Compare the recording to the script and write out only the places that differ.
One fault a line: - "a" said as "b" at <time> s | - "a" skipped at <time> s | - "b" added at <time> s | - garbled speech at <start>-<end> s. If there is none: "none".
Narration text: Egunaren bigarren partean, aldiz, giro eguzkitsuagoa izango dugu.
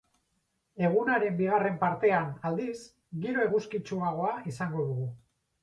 none